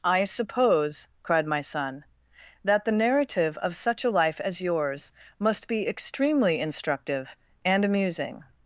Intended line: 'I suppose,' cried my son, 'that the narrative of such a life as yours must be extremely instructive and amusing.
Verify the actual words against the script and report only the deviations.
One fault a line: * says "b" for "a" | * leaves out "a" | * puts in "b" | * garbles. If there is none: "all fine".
all fine